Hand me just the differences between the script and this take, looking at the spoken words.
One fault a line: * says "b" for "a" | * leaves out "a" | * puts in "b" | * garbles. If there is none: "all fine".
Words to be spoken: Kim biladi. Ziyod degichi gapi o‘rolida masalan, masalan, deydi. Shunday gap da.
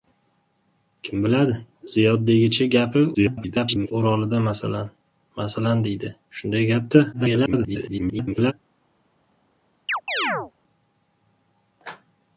* garbles
* garbles